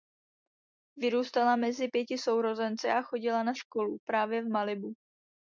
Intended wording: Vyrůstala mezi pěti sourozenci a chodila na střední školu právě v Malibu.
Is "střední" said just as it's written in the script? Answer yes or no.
no